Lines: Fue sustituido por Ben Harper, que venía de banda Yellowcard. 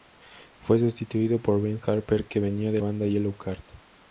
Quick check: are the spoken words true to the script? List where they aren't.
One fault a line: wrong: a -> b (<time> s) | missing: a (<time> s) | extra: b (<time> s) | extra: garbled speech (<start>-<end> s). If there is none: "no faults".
no faults